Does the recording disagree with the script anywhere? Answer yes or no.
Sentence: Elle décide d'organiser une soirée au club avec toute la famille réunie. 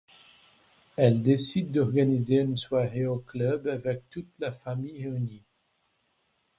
no